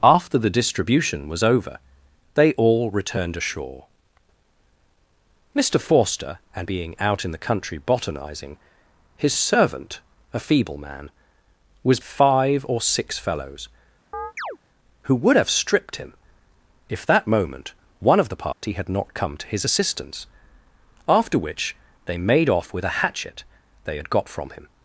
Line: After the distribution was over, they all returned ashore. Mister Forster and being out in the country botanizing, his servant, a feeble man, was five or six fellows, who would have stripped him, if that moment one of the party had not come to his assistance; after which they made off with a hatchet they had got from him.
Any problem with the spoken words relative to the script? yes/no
no